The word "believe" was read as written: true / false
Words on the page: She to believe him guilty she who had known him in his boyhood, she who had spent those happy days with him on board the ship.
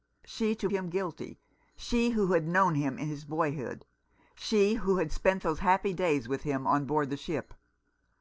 false